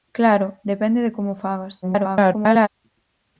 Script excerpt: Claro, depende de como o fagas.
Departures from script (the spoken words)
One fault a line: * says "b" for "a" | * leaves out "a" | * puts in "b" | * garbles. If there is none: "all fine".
* garbles